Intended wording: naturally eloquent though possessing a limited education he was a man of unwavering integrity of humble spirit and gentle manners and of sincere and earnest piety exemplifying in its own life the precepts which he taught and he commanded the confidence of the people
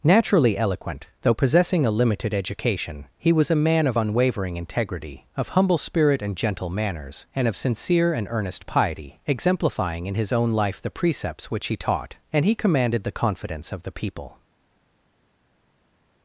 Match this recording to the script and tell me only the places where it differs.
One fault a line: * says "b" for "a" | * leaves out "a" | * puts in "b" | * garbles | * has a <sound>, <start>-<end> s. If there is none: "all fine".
* says "his" for "its"